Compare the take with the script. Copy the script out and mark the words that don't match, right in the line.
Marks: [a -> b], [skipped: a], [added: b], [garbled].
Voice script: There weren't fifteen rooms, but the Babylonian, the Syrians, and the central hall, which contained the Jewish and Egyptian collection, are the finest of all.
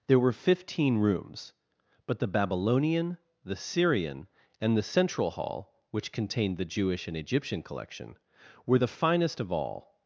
There [weren't -> were] fifteen rooms, but the Babylonian, the [Syrians, -> Syrian] and the central hall, which contained the Jewish and Egyptian collection, [are -> were] the finest of all.